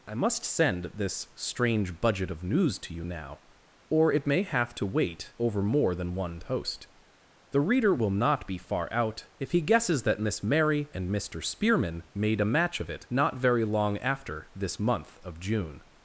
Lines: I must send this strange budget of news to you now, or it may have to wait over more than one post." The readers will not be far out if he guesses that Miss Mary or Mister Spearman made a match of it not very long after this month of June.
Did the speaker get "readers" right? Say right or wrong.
wrong